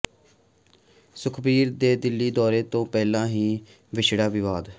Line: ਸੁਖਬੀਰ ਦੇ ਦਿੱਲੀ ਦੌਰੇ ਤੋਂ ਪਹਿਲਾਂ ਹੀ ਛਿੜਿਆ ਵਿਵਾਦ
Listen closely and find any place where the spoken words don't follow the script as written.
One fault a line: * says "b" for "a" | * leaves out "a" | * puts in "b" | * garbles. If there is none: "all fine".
all fine